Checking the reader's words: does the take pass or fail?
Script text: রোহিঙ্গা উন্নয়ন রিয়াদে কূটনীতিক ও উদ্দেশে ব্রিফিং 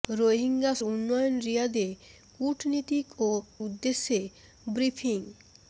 pass